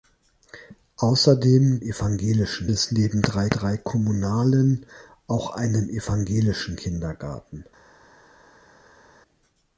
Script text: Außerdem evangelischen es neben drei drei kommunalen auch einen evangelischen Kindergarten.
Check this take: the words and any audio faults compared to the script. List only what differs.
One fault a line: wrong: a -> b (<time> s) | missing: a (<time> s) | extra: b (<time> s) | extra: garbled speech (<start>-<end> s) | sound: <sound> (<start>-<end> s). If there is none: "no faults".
no faults